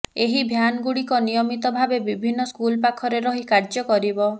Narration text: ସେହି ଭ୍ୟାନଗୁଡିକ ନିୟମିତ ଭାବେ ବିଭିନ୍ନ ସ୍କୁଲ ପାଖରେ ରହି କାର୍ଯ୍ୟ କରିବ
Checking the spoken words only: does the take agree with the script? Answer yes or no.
no